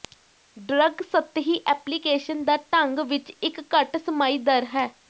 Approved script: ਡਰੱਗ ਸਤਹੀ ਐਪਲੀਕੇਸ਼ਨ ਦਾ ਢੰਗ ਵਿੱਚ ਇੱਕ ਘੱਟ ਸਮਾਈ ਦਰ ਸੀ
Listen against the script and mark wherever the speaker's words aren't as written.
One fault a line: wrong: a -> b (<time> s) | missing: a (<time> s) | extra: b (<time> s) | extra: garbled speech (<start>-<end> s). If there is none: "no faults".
wrong: ਸੀ -> ਹੈ (4.7 s)